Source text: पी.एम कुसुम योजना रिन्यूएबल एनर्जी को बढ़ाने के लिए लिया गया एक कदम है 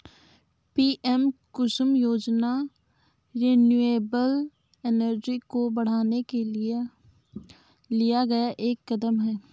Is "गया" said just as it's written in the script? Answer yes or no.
yes